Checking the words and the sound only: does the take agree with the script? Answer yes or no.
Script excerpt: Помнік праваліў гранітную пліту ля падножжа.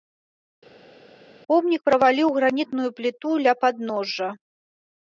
yes